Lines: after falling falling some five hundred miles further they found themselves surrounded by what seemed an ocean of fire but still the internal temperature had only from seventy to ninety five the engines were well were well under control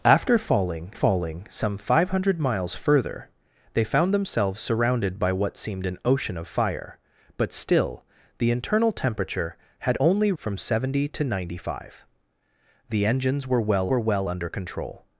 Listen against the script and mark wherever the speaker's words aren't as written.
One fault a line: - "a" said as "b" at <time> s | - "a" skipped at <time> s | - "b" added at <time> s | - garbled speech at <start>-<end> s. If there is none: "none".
none